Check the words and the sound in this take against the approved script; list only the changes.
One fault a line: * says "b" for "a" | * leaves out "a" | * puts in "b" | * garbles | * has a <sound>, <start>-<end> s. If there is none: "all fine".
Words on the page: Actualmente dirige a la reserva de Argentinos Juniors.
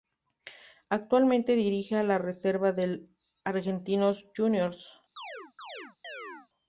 * has a chirp, 5.2-6.5 s